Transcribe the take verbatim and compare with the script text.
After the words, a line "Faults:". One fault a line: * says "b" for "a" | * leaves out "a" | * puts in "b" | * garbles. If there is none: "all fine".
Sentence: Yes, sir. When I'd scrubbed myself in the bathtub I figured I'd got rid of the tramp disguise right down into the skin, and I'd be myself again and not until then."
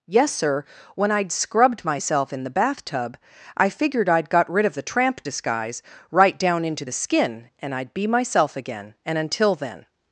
Yes, sir. When I'd scrubbed myself in the bathtub I figured I'd got rid of the tramp disguise right down into the skin, and I'd be myself again and until then."
Faults:
* leaves out "not"